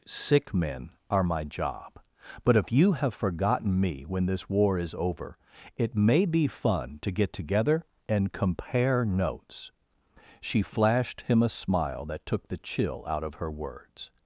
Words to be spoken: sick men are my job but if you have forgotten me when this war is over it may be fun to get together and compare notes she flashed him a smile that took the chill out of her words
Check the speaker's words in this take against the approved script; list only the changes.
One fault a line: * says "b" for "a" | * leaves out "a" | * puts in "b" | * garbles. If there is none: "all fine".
all fine